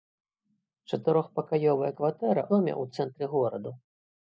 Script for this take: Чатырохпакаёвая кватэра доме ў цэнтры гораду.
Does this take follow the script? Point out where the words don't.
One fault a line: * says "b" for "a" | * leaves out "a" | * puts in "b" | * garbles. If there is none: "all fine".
all fine